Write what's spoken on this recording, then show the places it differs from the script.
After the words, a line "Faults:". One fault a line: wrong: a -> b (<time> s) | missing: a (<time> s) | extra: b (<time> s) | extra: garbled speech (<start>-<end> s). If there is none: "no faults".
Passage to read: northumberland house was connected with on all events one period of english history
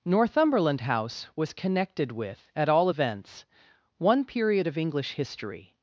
northumberland house was connected with at all events one period of english history
Faults:
wrong: on -> at (2.5 s)